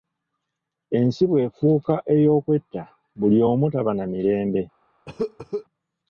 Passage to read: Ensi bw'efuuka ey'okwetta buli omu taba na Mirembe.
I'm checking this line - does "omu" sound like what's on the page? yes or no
yes